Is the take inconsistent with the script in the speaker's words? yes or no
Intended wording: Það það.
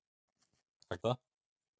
no